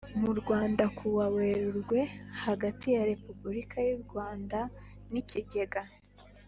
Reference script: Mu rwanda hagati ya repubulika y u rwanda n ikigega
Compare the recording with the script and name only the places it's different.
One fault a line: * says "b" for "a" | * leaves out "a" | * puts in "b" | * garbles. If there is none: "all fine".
* puts in "kuwa werurwe"